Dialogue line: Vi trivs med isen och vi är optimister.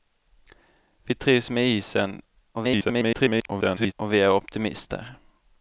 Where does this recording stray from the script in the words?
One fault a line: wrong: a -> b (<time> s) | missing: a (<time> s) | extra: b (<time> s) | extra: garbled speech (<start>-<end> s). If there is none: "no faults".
extra: garbled speech (2.5-3.9 s)